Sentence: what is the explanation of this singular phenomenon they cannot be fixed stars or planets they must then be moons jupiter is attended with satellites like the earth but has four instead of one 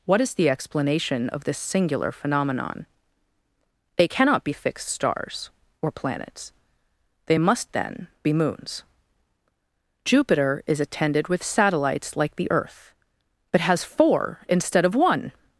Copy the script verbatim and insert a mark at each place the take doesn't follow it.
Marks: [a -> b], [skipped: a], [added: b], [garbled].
what is the explanation of this singular phenomenon they cannot be fixed stars or planets they must then be moons jupiter is attended with satellites like the earth but has four instead of one